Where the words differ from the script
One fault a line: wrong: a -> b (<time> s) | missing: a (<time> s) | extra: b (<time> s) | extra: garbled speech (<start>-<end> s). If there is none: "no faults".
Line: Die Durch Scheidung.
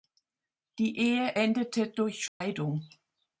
extra: Ehe endete (1.0 s)